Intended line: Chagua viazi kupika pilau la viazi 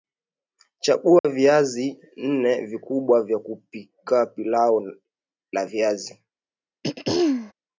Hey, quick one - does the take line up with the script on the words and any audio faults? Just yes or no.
no